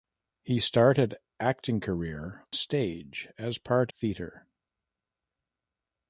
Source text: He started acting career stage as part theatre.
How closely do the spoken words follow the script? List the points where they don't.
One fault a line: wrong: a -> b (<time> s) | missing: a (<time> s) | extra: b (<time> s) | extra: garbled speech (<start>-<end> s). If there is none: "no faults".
no faults